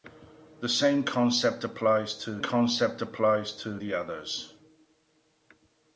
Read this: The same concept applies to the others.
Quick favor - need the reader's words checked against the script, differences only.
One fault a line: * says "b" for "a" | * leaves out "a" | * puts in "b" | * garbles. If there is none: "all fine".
* puts in "concept applies to"